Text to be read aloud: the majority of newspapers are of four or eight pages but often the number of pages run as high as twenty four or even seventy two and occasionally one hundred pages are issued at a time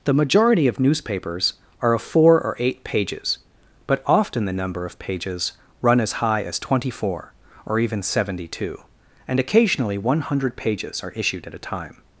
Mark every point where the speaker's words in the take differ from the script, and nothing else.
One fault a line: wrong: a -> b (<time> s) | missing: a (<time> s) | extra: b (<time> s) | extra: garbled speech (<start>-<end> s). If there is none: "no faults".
no faults